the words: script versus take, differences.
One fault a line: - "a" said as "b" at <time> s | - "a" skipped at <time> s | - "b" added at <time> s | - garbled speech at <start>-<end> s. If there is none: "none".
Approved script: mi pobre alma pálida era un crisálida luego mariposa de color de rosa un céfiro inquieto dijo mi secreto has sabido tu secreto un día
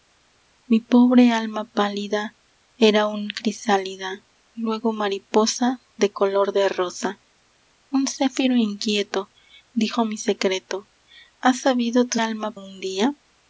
- "secreto" said as "alma" at 12.2 s